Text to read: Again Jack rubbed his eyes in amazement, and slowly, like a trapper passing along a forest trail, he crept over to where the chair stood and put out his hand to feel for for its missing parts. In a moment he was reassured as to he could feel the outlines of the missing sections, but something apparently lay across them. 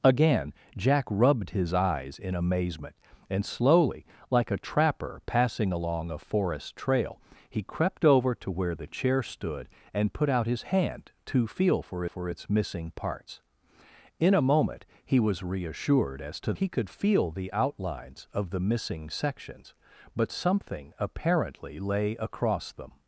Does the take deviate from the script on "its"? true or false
false